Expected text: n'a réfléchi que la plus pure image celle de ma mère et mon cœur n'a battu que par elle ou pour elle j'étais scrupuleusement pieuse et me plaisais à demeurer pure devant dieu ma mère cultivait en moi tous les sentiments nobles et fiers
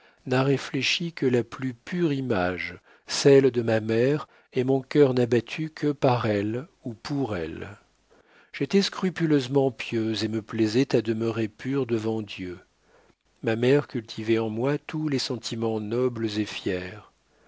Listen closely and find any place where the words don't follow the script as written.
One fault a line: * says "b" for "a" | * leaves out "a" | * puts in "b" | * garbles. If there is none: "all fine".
all fine